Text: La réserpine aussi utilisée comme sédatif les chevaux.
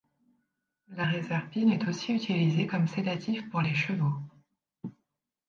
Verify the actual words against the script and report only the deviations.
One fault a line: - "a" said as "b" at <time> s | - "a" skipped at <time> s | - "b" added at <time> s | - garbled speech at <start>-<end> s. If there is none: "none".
- "est" added at 1.7 s
- "pour" added at 3.5 s